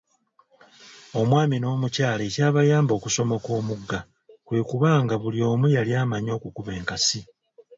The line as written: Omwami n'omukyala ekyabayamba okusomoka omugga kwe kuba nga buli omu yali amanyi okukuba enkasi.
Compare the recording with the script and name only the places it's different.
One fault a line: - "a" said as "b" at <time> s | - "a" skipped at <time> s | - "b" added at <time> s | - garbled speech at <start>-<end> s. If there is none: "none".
none